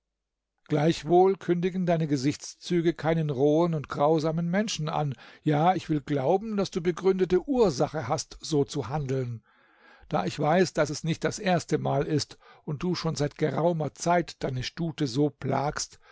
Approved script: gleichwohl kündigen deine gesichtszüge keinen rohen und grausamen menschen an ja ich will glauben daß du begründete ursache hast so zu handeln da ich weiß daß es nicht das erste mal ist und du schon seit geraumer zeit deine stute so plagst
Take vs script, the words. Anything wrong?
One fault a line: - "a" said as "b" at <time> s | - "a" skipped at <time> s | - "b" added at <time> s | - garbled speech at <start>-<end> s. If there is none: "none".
none